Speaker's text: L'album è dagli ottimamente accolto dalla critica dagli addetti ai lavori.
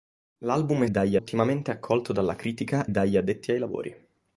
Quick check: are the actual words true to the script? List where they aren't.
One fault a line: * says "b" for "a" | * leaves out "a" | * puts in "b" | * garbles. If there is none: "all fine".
all fine